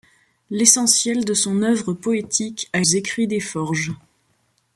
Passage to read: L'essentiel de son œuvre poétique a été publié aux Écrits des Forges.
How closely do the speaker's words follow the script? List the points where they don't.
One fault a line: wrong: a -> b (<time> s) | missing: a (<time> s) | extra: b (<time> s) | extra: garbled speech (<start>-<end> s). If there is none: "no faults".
missing: été publié aux (2.8 s)